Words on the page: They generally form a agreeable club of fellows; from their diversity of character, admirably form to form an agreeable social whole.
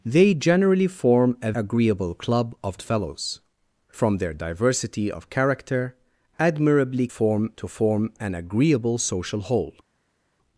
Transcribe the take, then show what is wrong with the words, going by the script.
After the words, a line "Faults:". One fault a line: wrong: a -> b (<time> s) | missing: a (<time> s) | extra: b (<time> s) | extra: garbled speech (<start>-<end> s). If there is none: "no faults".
They generally form a agreeable club of fellows; from their diversity of character, admirably form to form an agreeable social whole.
Faults:
no faults